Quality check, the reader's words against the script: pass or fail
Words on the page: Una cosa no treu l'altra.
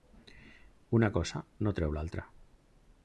pass